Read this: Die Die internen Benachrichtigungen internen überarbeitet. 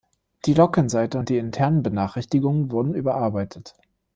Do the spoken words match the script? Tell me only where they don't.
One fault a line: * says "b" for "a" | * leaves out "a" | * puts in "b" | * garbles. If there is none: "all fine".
* puts in "Login Seite und"
* says "wurden" for "internen"